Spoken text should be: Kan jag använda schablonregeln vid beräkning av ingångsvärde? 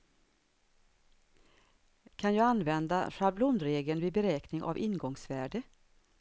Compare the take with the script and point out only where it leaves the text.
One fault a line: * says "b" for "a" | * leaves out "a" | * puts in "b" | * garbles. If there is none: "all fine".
all fine